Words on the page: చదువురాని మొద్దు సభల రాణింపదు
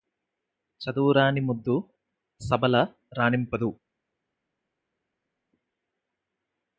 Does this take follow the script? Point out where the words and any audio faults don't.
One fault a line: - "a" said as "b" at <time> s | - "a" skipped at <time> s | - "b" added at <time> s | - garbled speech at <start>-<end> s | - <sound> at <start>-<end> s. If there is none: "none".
none